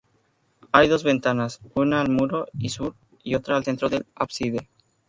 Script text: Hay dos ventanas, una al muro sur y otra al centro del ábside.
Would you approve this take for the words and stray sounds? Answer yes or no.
yes